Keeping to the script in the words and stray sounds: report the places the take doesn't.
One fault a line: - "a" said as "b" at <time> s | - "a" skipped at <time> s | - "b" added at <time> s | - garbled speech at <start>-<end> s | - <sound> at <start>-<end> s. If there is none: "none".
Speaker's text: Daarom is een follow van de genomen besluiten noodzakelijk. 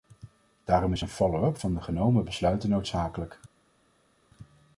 - "up" added at 1.4 s